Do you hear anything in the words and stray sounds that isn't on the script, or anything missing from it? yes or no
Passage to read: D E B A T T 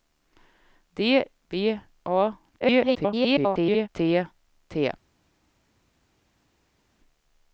yes